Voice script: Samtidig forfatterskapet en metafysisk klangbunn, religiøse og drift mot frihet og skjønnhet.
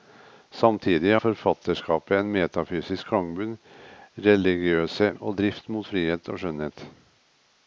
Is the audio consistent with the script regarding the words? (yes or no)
yes